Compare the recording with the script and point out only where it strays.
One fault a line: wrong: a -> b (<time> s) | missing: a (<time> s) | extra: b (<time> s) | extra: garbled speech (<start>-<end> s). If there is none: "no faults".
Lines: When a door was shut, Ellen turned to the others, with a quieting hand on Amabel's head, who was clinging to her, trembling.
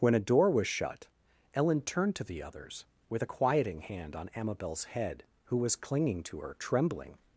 no faults